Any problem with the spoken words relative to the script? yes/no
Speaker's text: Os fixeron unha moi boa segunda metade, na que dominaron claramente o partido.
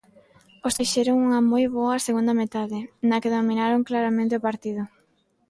no